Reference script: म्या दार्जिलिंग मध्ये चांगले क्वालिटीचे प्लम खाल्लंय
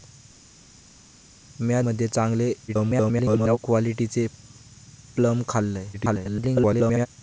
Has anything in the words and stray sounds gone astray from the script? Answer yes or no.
yes